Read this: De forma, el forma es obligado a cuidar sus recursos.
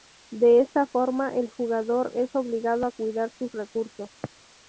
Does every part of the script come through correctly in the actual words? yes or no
no